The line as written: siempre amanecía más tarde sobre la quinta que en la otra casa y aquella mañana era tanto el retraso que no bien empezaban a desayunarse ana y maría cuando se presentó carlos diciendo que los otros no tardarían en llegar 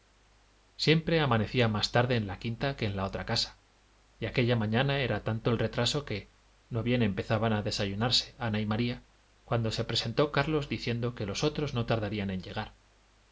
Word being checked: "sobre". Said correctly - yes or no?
no